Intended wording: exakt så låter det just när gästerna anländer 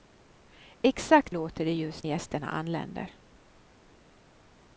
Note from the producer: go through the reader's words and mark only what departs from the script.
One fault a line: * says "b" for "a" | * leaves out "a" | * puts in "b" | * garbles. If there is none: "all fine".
* leaves out "så"
* leaves out "när"